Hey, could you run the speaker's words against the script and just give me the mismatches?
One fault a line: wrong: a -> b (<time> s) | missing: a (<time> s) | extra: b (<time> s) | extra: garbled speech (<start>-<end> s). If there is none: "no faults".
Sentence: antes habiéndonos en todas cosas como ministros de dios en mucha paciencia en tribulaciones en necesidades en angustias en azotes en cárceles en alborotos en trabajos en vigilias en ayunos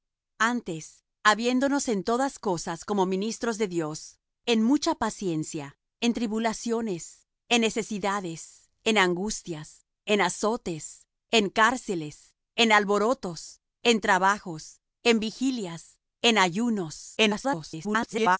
extra: garbled speech (17.2-18.4 s)